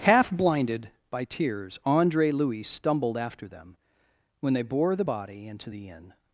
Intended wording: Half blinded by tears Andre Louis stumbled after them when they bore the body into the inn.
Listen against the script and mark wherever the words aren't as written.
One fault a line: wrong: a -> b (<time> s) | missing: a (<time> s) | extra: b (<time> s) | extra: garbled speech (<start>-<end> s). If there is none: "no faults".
no faults